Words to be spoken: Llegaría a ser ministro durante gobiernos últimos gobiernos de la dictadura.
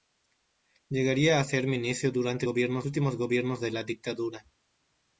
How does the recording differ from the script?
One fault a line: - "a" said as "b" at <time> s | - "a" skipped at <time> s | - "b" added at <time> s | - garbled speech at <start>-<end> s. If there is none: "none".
none